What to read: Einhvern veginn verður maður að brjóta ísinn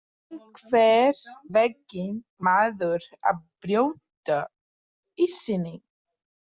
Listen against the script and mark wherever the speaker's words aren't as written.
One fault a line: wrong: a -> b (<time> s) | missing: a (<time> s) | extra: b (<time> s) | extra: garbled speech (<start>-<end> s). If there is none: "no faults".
missing: verður (2.1 s)